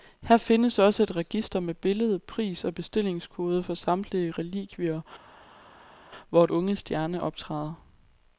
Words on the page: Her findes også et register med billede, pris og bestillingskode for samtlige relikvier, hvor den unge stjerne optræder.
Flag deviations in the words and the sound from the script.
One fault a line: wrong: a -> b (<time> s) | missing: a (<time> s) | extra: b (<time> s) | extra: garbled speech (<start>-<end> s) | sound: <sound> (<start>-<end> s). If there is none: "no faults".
missing: den (6.5 s)